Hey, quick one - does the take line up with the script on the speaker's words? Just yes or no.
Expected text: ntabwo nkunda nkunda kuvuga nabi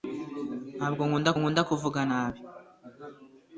yes